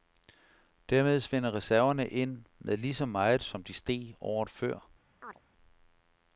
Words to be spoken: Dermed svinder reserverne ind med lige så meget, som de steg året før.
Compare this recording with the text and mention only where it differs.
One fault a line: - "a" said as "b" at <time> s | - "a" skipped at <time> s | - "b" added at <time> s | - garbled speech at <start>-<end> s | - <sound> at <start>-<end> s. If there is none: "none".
- chirp at 5.2-5.4 s